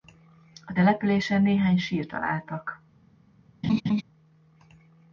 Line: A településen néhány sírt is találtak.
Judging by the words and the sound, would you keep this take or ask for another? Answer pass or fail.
fail